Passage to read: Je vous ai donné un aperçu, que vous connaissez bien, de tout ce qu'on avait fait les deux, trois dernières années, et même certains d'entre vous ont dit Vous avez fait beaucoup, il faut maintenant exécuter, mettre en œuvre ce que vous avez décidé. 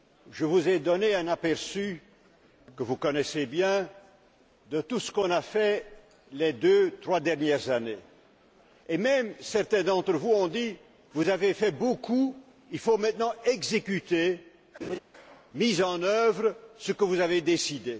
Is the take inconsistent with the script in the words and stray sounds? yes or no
yes